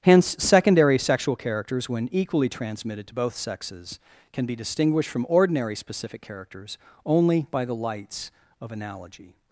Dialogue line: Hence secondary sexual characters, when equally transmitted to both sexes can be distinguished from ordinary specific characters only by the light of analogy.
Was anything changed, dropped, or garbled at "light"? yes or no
yes